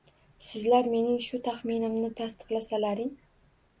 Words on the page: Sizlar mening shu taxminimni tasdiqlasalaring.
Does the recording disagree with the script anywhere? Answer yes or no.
no